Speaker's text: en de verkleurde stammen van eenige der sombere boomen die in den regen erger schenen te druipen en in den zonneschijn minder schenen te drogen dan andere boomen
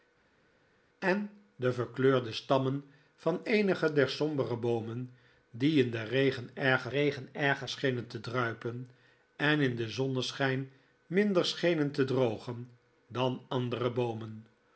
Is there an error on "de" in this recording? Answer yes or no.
no